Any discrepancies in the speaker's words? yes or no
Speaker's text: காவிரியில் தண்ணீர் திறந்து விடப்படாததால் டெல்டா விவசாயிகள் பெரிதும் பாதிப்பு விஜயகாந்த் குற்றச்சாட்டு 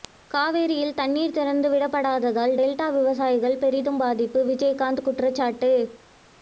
no